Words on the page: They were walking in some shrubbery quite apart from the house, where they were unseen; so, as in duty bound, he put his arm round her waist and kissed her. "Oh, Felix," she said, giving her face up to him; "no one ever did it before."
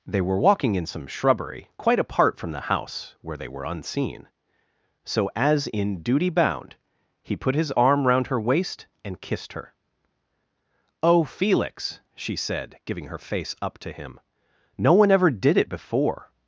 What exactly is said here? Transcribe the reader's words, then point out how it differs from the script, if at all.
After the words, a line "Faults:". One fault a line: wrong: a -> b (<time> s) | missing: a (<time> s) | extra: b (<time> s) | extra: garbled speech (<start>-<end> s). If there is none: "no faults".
They were walking in some shrubbery quite apart from the house, where they were unseen; so, as in duty bound, he put his arm round her waist and kissed her. "Oh, Felix," she said, giving her face up to him; "no one ever did it before."
Faults:
no faults